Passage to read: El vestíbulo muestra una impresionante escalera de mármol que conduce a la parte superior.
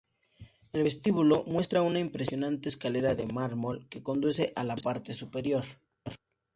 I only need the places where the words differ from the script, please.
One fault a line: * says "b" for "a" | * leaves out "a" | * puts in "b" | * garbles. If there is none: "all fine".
all fine